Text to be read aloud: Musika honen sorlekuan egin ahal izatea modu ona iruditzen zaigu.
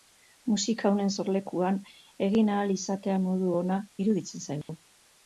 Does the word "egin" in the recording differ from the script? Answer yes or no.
no